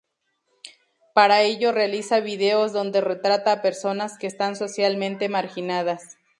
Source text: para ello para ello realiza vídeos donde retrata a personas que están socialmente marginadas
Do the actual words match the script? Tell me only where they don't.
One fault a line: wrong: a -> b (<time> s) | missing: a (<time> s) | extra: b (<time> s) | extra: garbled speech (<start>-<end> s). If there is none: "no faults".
missing: para ello (1.7 s)